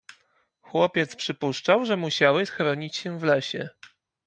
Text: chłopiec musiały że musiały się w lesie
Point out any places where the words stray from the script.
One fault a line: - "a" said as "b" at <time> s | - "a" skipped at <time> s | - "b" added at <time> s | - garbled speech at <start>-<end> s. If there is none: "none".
- "musiały" said as "przypuszczał" at 1.1 s
- "schronić" added at 2.4 s